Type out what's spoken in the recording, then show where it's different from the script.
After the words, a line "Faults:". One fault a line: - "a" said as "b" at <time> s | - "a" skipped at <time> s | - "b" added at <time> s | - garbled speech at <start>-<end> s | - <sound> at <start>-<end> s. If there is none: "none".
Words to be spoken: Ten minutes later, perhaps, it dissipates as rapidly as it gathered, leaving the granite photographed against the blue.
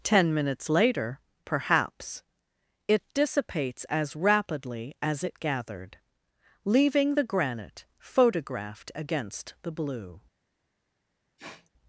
Ten minutes later, perhaps, it dissipates as rapidly as it gathered, leaving the granite photographed against the blue.
Faults:
- sniff at 11.4-11.7 s